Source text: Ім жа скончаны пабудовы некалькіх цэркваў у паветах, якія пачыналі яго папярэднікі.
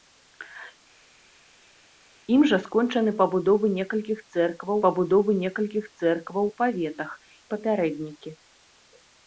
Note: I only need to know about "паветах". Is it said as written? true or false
false